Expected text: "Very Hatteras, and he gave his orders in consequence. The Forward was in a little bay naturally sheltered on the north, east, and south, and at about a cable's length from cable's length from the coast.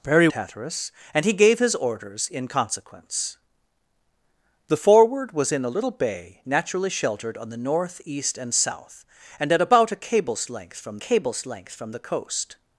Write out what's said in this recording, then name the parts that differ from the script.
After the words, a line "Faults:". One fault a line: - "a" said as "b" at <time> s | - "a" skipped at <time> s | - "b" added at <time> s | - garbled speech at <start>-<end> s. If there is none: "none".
"Very Hatteras, and he gave his orders in consequence. The Forward was in a little bay naturally sheltered on the north, east, and south, and at about a cable's length from cable's length from the coast.
Faults:
none